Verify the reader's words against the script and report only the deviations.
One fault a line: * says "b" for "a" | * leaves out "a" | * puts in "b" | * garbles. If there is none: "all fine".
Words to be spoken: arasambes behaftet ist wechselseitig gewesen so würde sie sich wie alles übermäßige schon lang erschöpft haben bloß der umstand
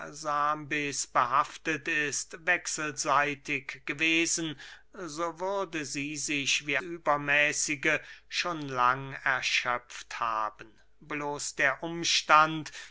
* leaves out "alles"